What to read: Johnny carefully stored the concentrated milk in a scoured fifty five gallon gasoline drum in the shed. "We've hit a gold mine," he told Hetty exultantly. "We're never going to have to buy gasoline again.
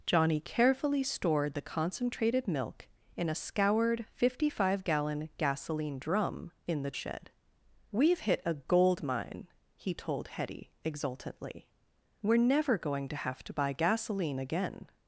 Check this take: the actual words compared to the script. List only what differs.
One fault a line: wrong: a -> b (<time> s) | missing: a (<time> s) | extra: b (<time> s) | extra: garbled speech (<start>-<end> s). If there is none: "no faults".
no faults